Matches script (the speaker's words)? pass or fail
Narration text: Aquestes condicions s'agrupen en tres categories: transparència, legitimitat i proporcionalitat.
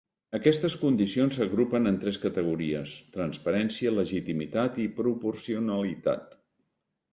pass